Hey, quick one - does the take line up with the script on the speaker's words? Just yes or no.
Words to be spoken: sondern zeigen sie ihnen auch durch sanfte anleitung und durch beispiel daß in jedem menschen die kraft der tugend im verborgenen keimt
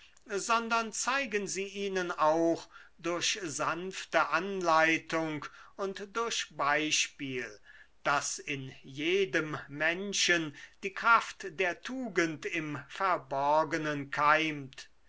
yes